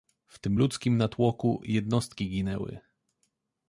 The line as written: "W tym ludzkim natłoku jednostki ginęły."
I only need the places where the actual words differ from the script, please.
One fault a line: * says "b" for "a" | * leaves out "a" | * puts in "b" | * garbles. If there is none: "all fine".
all fine